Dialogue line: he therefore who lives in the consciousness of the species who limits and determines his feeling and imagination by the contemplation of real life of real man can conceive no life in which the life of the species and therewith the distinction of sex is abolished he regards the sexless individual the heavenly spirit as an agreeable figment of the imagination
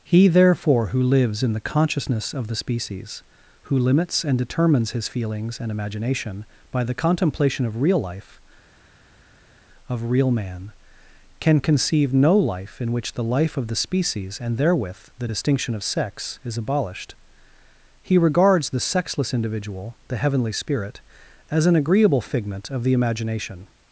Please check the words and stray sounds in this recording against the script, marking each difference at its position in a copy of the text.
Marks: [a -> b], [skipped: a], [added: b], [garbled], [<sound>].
he therefore who lives in the consciousness of the species who limits and determines his [feeling -> feelings] and imagination by the contemplation of real life of real man can conceive no life in which the life of the species and therewith the distinction of sex is abolished he regards the sexless individual the heavenly spirit as an agreeable figment of the imagination